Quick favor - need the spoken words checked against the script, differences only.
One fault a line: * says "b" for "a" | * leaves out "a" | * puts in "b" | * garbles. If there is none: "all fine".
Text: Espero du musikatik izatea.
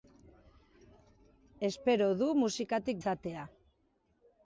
all fine